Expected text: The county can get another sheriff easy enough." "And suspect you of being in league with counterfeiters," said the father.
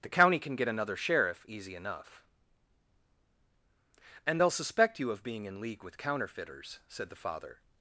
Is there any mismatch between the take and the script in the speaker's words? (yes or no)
yes